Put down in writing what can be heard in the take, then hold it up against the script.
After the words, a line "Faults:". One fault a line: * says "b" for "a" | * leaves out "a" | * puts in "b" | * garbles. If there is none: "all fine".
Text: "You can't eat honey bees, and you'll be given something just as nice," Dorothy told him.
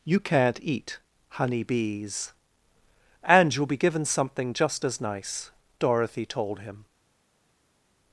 "You can't eat honey bees, and you'll be given something just as nice," Dorothy told him.
Faults:
all fine